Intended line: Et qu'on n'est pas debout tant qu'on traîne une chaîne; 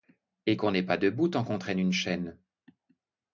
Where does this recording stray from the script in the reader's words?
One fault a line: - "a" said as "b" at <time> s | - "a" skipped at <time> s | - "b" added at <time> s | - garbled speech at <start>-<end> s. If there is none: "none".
none